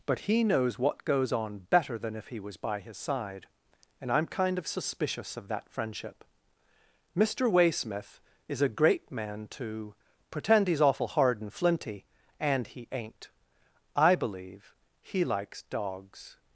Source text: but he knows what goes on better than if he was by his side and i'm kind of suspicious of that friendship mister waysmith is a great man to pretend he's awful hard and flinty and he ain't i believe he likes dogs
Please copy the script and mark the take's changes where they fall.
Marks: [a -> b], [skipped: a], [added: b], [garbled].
but he knows what goes on better than if he was by his side and i'm kind of suspicious of that friendship mister waysmith is a great man to pretend he's awful hard and flinty and he ain't i believe he likes dogs